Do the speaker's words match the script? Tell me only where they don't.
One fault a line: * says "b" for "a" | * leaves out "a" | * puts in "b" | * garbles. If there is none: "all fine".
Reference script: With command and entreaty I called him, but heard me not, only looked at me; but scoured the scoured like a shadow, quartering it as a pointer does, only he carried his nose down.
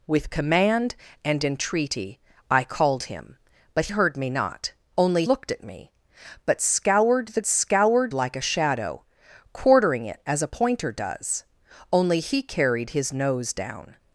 all fine